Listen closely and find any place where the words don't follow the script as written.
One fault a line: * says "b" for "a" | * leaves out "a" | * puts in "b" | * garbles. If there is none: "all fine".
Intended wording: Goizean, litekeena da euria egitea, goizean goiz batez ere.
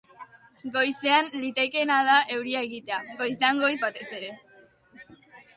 all fine